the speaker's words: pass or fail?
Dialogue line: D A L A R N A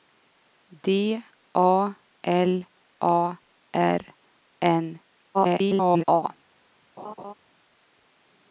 fail